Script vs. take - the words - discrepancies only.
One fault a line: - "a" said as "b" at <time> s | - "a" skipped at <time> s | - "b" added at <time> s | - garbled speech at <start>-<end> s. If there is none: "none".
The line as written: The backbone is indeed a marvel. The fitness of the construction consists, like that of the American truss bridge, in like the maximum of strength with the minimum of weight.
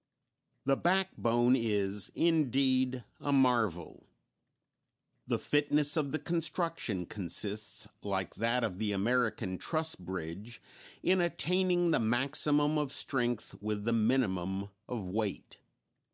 - "like" said as "attaining" at 11.2 s